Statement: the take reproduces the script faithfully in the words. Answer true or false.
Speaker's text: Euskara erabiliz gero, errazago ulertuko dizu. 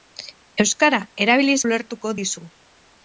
false